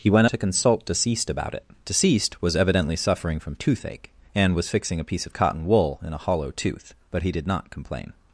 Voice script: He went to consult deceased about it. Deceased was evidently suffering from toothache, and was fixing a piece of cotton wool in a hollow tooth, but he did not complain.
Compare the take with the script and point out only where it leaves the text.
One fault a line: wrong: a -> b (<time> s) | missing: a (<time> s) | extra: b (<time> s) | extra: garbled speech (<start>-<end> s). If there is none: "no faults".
no faults